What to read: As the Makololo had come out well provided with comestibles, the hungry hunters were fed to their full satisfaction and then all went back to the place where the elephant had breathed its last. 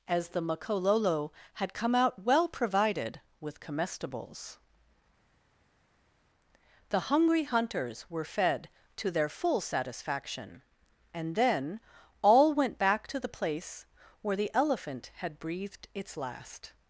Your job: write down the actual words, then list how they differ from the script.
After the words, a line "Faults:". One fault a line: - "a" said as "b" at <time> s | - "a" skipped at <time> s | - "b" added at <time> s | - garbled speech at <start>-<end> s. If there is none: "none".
As the Makololo had come out well provided with comestibles, the hungry hunters were fed to their full satisfaction and then all went back to the place where the elephant had breathed its last.
Faults:
none